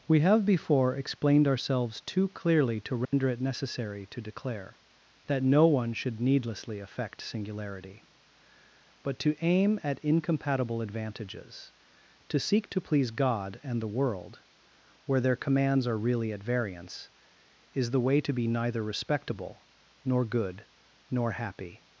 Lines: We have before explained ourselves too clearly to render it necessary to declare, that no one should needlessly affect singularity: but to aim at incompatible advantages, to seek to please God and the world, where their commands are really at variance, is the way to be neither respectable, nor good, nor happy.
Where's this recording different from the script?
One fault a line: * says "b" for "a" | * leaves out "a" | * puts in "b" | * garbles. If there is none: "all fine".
all fine